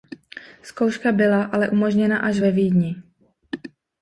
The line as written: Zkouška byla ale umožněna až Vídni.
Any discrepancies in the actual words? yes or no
yes